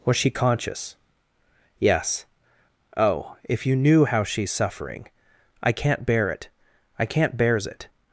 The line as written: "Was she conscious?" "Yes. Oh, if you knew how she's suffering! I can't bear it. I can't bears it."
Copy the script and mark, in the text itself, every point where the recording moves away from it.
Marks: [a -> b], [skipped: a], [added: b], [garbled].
"Was she conscious?" "Yes. Oh, if you knew how she's suffering! I can't bear it. I can't bears it."